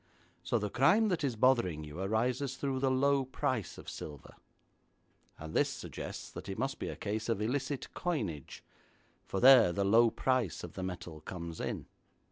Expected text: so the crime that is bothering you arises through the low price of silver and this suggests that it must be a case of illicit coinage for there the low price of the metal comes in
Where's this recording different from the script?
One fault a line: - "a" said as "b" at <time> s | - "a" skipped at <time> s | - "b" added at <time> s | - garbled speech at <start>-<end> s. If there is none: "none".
none